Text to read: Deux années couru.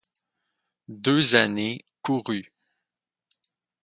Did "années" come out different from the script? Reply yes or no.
no